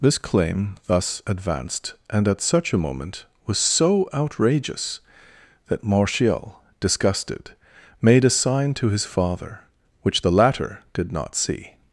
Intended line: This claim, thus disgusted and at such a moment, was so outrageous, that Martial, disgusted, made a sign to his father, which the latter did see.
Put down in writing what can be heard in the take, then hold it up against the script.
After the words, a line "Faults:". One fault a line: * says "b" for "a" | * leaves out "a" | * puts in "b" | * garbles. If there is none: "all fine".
This claim, thus advanced and at such a moment, was so outrageous, that Martial, disgusted, made a sign to his father, which the latter did not see.
Faults:
* says "advanced" for "disgusted"
* puts in "not"